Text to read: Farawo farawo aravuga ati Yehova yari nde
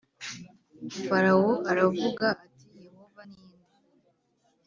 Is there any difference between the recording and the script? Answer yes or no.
yes